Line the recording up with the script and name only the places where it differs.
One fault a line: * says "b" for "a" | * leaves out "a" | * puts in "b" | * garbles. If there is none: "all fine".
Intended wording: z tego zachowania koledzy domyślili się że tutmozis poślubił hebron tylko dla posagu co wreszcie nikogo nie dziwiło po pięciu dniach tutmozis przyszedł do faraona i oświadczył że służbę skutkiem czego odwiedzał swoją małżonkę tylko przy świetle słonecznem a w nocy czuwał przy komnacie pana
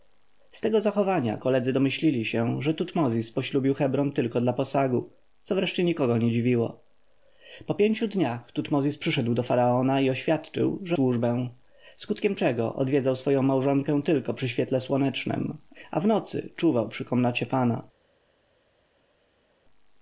all fine